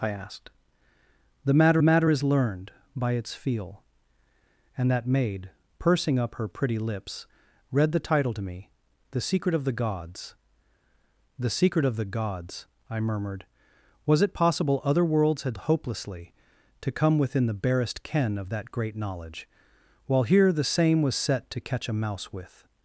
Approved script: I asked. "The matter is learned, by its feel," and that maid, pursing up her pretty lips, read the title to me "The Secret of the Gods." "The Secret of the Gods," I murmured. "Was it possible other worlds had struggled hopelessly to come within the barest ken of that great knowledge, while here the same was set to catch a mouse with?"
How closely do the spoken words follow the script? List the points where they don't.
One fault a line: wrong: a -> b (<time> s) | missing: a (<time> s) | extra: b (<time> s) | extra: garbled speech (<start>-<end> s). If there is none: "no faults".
extra: matter (1.8 s)
missing: struggled (15.6 s)